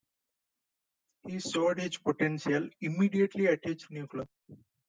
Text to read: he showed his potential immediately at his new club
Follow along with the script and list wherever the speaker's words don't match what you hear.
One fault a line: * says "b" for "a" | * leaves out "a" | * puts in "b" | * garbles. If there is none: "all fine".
all fine